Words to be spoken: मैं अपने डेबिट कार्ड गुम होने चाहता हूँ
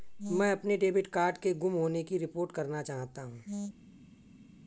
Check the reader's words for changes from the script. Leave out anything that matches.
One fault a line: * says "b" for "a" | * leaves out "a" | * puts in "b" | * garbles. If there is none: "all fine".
* puts in "के"
* puts in "की रिपोर्ट करना"